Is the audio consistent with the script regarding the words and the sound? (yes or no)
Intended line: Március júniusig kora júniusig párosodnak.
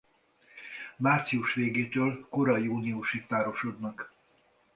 no